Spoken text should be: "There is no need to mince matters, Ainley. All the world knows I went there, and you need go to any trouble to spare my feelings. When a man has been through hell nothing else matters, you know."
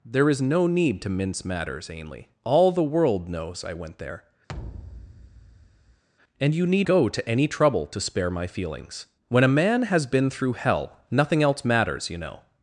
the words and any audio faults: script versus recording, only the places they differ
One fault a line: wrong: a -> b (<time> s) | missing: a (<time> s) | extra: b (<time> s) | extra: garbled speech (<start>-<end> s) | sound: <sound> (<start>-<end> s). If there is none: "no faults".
sound: thud (4.5-6.0 s)